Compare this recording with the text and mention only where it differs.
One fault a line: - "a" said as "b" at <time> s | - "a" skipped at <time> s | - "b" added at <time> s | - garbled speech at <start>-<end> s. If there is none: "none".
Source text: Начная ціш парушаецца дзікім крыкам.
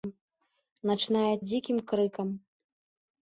- "ціш парушаецца" skipped at 1.4 s